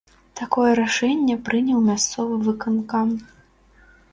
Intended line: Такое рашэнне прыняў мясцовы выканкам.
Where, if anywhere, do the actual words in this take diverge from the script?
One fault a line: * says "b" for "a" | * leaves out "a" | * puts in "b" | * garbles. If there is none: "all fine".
all fine